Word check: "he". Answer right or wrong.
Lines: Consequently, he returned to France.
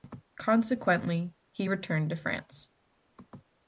right